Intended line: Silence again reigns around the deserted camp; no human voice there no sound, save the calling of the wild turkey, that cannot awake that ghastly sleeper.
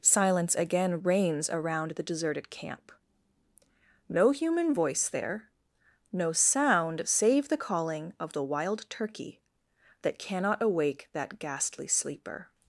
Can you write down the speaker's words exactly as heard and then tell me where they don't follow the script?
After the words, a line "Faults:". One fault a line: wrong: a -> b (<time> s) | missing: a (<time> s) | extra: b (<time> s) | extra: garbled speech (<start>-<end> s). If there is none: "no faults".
Silence again reigns around the deserted camp; no human voice there no sound, save the calling of the wild turkey, that cannot awake that ghastly sleeper.
Faults:
no faults